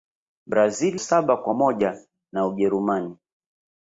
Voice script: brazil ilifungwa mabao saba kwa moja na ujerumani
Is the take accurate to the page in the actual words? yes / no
no